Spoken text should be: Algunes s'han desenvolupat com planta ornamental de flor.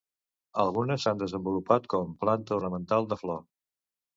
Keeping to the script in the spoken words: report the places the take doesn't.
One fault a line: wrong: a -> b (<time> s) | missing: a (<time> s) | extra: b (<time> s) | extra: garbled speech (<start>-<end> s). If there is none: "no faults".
no faults